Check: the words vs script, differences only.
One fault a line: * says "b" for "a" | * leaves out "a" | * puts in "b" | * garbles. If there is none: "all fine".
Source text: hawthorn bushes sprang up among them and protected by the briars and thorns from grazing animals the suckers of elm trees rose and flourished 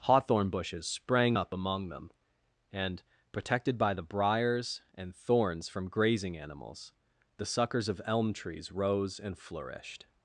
all fine